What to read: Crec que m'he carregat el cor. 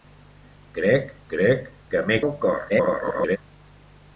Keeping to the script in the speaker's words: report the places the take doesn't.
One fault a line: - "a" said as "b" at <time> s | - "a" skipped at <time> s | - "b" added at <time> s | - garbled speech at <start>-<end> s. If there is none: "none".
- "crec" added at 1.3 s
- "carregat" skipped at 2.2 s
- garbled speech at 2.7-3.4 s